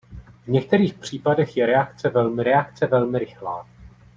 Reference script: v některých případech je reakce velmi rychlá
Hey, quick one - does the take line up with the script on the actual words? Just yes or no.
no